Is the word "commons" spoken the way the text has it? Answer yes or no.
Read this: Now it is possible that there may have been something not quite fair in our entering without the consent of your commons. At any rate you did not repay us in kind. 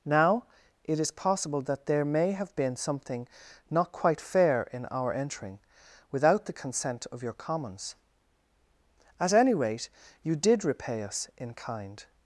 yes